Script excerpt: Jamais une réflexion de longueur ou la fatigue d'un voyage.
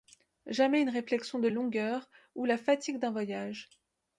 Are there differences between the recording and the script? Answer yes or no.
no